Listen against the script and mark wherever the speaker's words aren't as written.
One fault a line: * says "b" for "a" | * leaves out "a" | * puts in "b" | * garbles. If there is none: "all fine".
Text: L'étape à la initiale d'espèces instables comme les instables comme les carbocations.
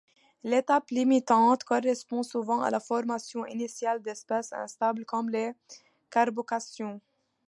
* puts in "limitante correspond souvent"
* puts in "formation"
* leaves out "instables comme les"